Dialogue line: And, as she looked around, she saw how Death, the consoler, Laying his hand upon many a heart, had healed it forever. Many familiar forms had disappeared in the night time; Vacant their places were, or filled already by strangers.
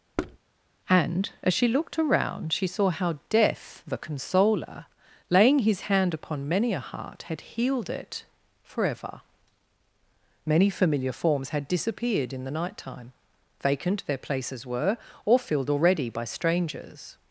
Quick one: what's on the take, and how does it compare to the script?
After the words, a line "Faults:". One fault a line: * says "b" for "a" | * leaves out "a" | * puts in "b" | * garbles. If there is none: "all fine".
And, as she looked around, she saw how Death, the consoler, Laying his hand upon many a heart, had healed it forever. Many familiar forms had disappeared in the night time; Vacant their places were, or filled already by strangers.
Faults:
all fine